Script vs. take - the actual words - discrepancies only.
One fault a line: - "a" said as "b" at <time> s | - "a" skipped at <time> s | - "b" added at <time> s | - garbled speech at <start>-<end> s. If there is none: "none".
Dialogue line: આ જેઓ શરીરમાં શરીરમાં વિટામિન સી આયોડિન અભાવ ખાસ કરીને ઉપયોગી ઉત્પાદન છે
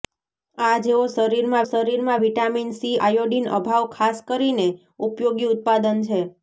none